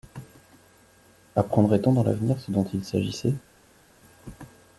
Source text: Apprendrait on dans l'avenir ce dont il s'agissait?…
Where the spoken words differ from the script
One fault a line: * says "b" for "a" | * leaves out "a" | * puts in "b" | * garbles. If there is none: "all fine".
all fine